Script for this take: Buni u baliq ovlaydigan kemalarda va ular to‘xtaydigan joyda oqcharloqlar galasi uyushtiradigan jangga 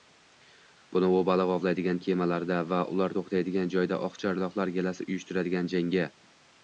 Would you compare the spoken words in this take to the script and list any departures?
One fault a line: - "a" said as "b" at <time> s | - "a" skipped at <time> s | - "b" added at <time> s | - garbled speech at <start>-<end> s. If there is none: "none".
none